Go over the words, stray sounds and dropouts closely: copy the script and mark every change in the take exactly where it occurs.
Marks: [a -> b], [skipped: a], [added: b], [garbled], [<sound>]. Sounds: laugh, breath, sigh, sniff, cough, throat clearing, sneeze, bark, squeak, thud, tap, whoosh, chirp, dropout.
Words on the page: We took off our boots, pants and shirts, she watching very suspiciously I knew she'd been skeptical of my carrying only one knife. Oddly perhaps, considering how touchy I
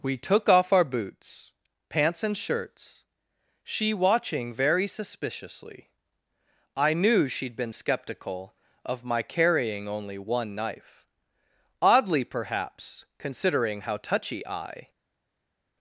We took off our boots, pants and shirts, she watching very suspiciously I knew she'd been skeptical of my carrying only one knife. Oddly perhaps, considering how touchy I